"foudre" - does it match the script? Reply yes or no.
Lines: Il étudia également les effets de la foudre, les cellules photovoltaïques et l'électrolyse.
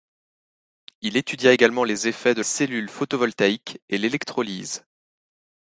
no